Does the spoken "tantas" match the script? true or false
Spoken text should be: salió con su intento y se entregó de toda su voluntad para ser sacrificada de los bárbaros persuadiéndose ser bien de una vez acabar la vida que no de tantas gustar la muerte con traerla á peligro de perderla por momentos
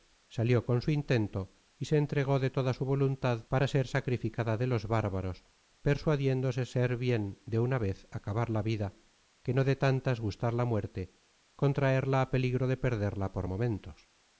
true